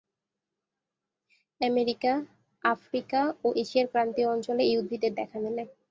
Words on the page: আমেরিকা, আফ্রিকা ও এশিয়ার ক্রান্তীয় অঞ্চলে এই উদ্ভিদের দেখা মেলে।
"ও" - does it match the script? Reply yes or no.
yes